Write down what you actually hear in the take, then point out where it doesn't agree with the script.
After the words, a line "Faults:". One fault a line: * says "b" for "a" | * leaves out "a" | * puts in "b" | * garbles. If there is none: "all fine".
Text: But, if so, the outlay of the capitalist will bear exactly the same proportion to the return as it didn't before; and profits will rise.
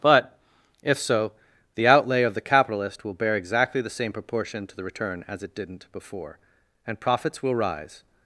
But, if so, the outlay of the capitalist will bear exactly the same proportion to the return as it didn't before; and profits will rise.
Faults:
all fine